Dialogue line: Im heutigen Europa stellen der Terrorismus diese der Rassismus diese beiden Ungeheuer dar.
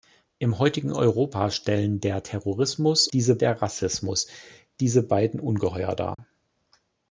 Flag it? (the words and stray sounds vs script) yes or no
yes